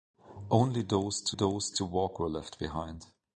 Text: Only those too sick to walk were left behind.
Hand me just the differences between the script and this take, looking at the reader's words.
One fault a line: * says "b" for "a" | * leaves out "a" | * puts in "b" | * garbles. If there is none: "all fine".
* says "those" for "sick"